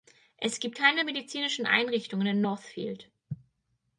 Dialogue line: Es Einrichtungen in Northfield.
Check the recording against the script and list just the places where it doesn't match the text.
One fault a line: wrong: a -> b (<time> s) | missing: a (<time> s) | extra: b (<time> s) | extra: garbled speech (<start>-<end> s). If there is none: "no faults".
extra: gibt keine medizinischen (0.6 s)